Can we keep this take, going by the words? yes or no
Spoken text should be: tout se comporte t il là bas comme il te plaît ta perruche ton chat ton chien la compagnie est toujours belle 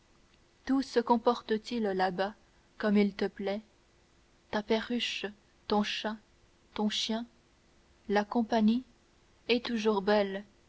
yes